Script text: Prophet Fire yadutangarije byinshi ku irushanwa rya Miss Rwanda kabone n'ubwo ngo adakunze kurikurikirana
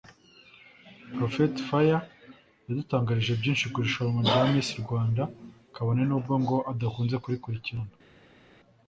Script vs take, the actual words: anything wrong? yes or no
no